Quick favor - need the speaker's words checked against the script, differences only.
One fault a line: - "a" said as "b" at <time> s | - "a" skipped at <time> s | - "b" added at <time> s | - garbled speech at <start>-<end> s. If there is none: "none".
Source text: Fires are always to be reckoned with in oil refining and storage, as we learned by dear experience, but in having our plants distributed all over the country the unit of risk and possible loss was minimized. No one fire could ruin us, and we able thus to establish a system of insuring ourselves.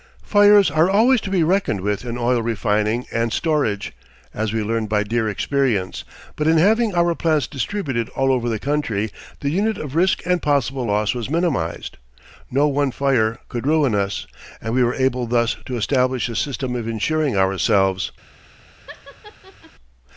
- "were" added at 14.8 s